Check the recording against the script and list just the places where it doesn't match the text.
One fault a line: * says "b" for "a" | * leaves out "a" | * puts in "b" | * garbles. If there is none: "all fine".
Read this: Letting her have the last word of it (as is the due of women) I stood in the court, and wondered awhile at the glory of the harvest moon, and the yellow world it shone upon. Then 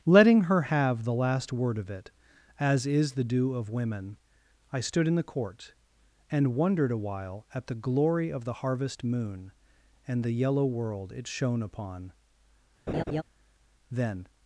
all fine